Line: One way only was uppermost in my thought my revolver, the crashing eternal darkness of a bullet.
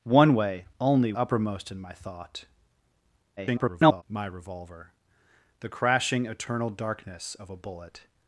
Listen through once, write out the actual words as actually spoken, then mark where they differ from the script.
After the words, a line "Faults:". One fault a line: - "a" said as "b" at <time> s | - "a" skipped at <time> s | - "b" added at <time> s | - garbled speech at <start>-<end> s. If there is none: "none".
One way only uppermost in my thought [garbled] my revolver, the crashing eternal darkness of a bullet.
Faults:
- "was" skipped at 1.1 s
- garbled speech at 3.4-4.0 s